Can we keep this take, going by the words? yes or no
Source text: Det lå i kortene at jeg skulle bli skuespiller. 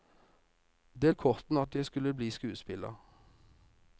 no